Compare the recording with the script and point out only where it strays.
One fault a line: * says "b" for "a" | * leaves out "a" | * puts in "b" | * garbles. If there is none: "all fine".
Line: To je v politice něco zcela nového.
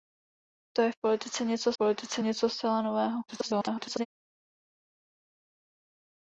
* puts in "politice něco"
* garbles